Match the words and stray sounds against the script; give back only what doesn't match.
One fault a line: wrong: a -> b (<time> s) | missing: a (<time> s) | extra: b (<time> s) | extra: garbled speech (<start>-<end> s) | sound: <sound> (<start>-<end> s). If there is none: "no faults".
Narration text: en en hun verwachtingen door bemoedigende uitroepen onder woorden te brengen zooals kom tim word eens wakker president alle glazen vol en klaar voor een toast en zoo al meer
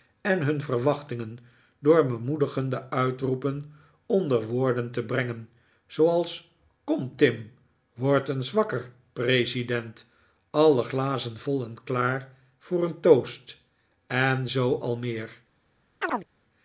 missing: en (0.4 s)
sound: chirp (16.0-16.3 s)